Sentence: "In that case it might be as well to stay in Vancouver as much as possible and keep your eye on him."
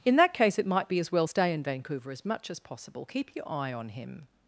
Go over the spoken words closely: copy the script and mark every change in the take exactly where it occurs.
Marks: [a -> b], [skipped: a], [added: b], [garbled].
"In that case it might be as well [skipped: to] stay in Vancouver as much as possible [skipped: and] keep your eye on him."